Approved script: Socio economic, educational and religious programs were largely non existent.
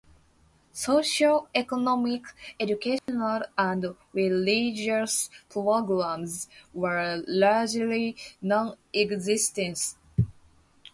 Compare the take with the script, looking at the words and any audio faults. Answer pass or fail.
fail